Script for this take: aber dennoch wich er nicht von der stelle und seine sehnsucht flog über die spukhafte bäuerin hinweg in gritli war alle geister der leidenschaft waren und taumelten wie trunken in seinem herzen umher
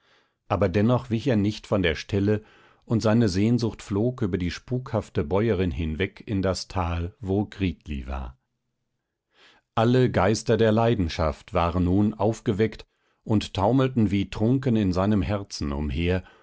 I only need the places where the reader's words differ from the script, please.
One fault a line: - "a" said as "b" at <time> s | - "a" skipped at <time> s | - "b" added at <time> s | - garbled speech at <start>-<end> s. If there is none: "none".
- "das tal wo" added at 6.4 s
- "nun aufgeweckt" added at 11.8 s